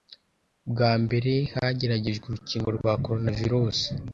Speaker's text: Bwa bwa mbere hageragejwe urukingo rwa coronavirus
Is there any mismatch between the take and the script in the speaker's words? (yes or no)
yes